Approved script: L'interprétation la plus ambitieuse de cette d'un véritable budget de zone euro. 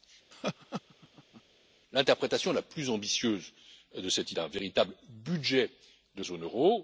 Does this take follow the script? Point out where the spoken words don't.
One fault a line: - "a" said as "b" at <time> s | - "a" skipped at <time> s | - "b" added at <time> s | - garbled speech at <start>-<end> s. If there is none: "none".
none